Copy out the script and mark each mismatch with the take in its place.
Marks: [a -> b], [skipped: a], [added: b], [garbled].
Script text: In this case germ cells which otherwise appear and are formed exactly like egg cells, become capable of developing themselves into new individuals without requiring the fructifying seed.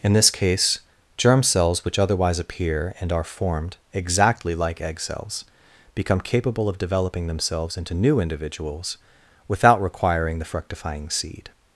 In this case germ cells which otherwise appear and are formed exactly like egg cells, become capable of developing themselves into new individuals without requiring the fructifying seed.